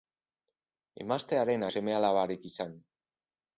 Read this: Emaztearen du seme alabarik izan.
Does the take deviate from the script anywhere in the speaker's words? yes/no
no